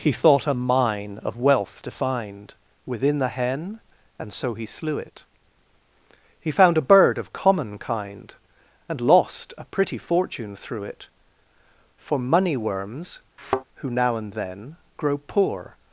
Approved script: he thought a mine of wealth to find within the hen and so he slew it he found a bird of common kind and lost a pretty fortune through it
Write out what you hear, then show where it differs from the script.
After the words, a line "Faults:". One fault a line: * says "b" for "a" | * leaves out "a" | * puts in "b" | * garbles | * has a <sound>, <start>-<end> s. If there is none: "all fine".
he thought a mine of wealth to find within the hen and so he slew it he found a bird of common kind and lost a pretty fortune through it for money worms who now and then grow poor
Faults:
* puts in "for money worms who now and then grow poor"
* has a thud, 13.4-13.6 s